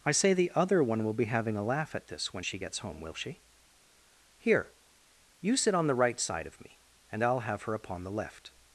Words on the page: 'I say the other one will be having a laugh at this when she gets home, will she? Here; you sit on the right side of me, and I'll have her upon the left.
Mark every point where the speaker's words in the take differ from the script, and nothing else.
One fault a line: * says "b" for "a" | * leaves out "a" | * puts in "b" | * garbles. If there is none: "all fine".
all fine